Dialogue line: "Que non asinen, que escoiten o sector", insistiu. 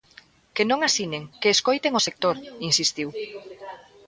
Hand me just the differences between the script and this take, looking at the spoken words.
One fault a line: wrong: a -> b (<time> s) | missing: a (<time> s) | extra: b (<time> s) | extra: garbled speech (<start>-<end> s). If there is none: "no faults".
no faults